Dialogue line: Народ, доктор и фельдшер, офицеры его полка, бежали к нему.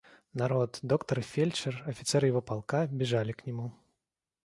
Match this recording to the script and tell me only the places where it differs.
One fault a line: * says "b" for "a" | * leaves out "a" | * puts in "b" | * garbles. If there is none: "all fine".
all fine